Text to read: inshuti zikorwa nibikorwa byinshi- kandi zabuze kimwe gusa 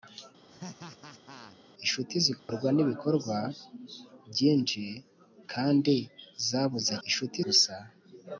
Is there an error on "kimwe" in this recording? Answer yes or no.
yes